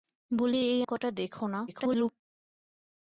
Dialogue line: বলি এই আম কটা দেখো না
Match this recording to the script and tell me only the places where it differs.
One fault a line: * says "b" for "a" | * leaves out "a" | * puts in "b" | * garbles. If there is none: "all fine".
* leaves out "আম"
* garbles